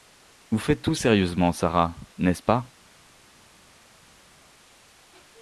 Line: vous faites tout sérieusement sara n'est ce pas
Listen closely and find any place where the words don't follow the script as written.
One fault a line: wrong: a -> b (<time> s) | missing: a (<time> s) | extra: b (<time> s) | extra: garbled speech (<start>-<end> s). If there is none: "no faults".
no faults